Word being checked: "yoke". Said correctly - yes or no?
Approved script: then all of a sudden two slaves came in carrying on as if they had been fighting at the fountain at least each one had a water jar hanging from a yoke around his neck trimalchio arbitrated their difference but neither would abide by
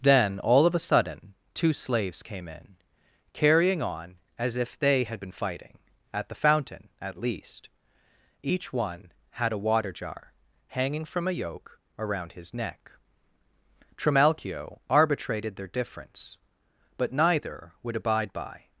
yes